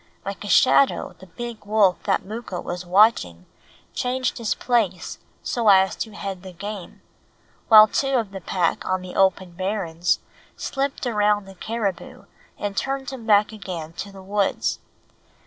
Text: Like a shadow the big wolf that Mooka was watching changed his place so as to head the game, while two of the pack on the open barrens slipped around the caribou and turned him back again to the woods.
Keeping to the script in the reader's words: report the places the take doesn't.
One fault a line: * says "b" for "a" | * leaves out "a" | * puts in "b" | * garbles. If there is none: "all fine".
all fine